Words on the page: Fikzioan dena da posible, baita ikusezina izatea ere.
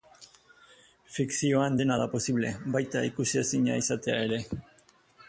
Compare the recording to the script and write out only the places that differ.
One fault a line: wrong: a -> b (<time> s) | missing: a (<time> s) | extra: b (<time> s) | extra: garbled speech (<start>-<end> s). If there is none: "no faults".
no faults